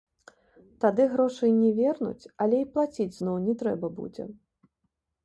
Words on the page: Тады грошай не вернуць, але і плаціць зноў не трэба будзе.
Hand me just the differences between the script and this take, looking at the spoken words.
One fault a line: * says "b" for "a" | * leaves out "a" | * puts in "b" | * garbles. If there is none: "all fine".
all fine